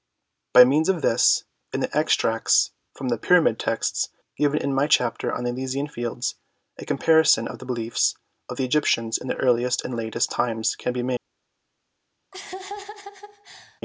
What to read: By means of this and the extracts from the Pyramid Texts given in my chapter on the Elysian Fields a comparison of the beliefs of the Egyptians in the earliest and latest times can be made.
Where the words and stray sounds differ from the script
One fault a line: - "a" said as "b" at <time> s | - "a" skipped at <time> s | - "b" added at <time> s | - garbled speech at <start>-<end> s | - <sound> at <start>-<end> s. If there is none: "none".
- laugh at 12.3-13.8 s